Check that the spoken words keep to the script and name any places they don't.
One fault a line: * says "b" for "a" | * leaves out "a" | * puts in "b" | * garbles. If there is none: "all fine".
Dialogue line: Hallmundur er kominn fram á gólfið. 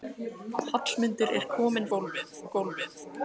* says "gólfið" for "fram"